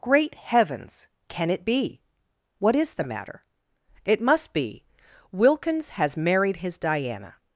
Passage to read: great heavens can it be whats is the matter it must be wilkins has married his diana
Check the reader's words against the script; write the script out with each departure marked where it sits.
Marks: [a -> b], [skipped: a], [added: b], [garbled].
great heavens can it be [whats -> what] is the matter it must be wilkins has married his diana